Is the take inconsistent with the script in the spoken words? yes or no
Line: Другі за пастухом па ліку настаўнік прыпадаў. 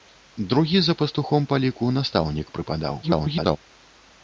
yes